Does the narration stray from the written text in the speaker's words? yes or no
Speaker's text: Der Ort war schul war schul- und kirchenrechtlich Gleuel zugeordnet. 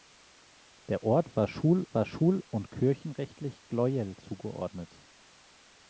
no